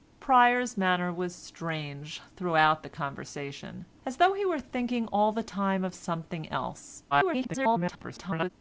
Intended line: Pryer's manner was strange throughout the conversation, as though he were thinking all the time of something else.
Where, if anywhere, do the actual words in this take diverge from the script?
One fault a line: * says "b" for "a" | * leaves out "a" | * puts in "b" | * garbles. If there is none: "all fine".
* garbles